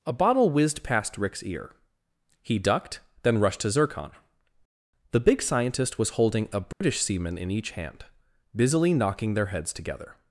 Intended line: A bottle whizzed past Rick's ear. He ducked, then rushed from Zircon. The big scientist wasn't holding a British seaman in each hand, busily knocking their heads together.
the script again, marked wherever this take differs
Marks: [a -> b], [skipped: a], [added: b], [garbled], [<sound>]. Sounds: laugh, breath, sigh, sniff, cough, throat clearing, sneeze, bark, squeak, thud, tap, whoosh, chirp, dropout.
A bottle whizzed past Rick's ear. He ducked, then rushed [from -> to] Zircon. The big scientist [wasn't -> was] holding a British [dropout] seaman in each hand, busily knocking their heads together.